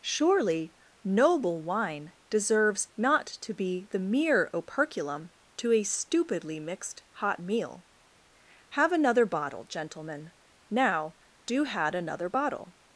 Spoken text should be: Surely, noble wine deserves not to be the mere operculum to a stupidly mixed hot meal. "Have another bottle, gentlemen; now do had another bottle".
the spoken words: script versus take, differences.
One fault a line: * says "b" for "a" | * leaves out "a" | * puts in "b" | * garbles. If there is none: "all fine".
all fine